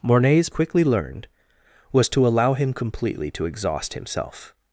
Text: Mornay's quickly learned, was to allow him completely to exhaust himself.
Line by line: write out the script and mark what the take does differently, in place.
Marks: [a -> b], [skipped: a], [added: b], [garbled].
Mornay's quickly learned, was to allow him completely to exhaust himself.